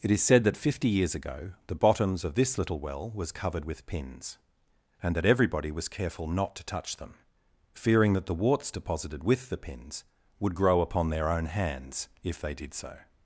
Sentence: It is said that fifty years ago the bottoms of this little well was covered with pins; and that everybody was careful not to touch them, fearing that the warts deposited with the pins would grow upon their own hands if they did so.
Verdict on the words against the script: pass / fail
pass